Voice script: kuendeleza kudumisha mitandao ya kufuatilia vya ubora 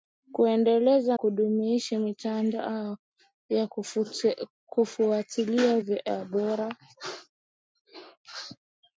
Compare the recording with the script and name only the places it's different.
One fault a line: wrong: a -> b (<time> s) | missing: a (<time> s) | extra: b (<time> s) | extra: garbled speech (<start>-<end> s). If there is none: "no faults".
no faults